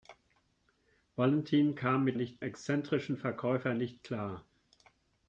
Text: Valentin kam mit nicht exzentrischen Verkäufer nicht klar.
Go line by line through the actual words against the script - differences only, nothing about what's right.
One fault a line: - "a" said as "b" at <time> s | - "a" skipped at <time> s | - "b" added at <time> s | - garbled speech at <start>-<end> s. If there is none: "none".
none